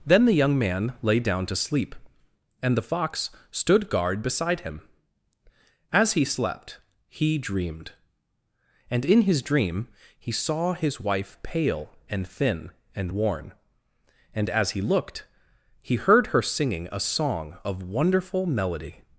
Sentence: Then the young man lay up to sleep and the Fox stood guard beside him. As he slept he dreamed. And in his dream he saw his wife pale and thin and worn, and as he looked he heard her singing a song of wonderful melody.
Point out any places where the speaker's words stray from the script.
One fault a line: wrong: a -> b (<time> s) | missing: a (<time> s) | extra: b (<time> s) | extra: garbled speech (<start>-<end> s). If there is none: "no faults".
wrong: up -> down (1.2 s)